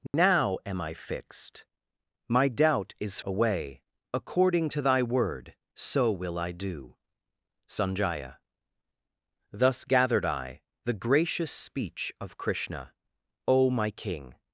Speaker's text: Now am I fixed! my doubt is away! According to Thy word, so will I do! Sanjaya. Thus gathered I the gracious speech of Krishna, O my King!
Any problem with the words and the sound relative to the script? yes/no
yes